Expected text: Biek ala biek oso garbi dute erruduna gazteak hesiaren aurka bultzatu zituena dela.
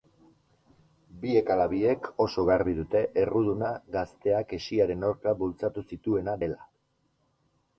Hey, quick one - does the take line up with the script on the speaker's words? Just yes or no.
yes